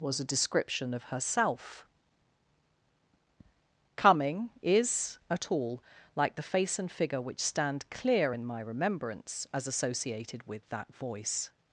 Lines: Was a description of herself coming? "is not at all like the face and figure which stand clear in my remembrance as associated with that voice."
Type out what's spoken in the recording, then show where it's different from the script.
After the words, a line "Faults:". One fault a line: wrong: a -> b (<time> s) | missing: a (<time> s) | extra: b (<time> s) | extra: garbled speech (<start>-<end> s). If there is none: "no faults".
Was a description of herself coming? "is at all like the face and figure which stand clear in my remembrance as associated with that voice."
Faults:
missing: not (5.2 s)